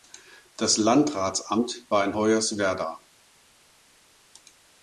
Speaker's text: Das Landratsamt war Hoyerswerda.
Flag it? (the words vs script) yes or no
yes